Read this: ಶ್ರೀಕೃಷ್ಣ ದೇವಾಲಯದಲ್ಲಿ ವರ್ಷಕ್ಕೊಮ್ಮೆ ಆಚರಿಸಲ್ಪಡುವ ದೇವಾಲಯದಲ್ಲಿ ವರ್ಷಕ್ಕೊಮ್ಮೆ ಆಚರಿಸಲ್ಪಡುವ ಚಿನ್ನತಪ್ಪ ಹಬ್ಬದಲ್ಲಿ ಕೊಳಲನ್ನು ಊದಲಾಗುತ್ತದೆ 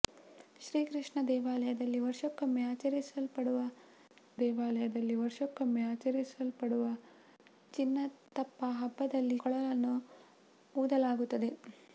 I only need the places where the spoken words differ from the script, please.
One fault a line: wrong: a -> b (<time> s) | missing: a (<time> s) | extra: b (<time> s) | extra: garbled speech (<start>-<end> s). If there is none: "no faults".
no faults